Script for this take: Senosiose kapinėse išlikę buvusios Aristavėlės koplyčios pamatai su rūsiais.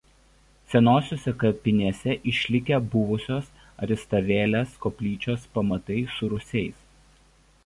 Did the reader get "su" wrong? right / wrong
right